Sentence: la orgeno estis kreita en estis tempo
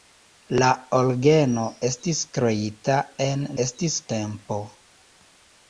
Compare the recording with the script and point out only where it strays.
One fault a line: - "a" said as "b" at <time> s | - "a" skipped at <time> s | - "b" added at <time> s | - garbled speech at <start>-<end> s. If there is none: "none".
none